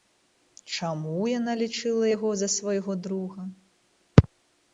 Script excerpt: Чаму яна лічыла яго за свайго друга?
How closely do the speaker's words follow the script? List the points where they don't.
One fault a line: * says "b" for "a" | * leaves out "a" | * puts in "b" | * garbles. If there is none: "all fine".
all fine